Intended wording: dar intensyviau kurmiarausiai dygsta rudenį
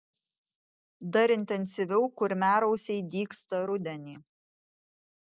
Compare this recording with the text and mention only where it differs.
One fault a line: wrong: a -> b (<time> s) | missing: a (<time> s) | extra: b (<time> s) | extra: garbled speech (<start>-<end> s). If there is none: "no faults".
no faults